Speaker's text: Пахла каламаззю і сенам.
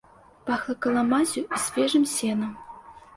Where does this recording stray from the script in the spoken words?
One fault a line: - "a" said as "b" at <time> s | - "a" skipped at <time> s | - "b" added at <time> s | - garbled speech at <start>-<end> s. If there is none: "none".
- "свежым" added at 1.6 s